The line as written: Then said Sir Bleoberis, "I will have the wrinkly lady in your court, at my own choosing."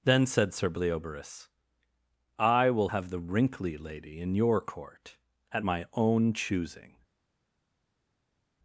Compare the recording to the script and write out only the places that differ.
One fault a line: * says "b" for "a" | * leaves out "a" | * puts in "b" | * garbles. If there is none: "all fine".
all fine